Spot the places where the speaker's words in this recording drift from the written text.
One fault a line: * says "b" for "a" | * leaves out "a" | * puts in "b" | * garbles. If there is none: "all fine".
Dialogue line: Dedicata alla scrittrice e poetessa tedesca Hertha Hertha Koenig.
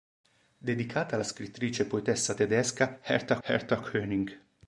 all fine